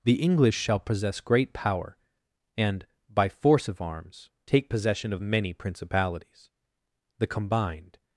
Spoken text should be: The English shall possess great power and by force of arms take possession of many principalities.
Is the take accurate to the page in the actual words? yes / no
no